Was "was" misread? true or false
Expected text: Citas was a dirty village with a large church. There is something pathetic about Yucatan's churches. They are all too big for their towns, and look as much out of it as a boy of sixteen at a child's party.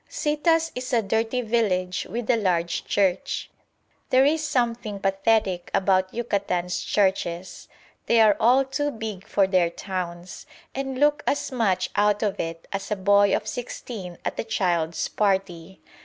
true